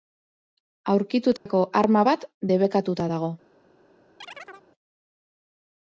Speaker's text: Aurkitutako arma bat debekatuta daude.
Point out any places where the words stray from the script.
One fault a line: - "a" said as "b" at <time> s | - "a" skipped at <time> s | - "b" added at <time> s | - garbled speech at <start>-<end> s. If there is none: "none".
- "daude" said as "dago" at 3.1 s